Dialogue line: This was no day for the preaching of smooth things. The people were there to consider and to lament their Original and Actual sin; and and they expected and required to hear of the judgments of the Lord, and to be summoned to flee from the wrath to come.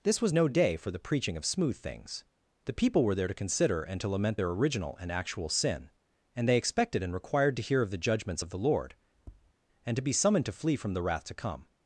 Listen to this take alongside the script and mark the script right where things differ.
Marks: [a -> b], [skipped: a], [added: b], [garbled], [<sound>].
This was no day for the preaching of smooth things. The people were there to consider and to lament their Original and Actual sin; and [skipped: and] they expected and required to hear of the judgments of the Lord, [tap] and to be summoned to flee from the wrath to come.